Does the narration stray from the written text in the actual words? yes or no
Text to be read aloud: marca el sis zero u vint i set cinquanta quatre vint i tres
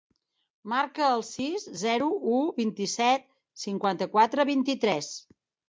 no